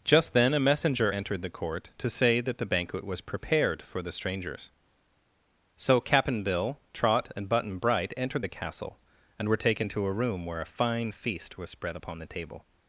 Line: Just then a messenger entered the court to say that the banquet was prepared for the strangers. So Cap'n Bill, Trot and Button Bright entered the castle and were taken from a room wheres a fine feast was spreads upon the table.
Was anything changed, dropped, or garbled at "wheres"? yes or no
yes